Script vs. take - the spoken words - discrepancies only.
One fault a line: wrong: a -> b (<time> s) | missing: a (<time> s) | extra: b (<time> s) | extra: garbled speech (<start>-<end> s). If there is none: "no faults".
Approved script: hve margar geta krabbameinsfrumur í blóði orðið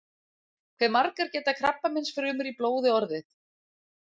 no faults